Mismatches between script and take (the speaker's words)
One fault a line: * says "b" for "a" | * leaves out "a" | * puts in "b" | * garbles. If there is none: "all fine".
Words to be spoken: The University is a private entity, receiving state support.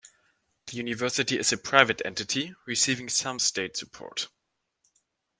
* puts in "some"